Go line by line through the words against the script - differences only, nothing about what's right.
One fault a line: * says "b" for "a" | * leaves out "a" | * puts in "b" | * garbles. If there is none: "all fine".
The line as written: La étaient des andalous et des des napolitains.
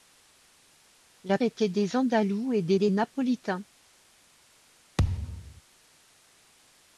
all fine